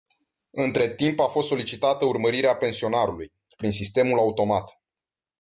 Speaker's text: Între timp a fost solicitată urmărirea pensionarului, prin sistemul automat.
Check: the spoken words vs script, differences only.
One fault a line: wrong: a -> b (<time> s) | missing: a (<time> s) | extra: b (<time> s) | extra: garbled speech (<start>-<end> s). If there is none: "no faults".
no faults